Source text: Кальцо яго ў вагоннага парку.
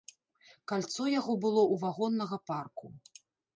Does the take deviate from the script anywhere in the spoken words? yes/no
yes